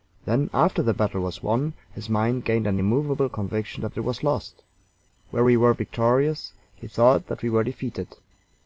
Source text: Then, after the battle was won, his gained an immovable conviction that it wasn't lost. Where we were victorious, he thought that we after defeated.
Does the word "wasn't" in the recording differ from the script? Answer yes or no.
yes